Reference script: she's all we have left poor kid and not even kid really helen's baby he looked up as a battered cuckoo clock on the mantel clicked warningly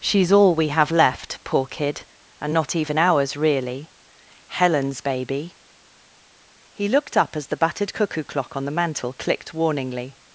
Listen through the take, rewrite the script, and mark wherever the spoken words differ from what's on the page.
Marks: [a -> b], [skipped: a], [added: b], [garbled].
she's all we have left poor kid and not even [kid -> ours] really helen's baby he looked up as [a -> the] battered cuckoo clock on the mantel clicked warningly